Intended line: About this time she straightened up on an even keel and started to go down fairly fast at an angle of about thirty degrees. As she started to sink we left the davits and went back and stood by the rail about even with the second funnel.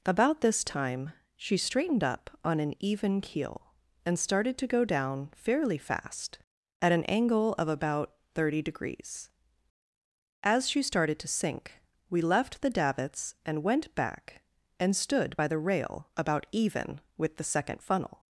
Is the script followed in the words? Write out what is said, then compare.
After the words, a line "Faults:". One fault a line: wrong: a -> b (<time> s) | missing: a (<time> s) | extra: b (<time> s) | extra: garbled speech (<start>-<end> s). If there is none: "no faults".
About this time she straightened up on an even keel and started to go down fairly fast at an angle of about thirty degrees. As she started to sink we left the davits and went back and stood by the rail about even with the second funnel.
Faults:
no faults